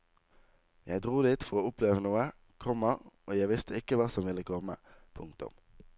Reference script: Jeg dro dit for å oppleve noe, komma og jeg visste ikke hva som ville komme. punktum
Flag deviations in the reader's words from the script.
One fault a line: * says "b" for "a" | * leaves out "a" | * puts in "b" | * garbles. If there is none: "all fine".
all fine